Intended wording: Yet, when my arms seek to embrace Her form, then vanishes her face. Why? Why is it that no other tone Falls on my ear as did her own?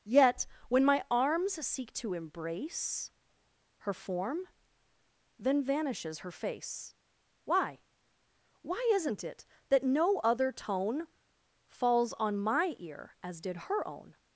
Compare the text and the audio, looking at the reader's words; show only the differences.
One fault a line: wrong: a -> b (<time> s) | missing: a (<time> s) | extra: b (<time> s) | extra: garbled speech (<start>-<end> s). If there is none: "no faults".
wrong: is -> isn't (8.9 s)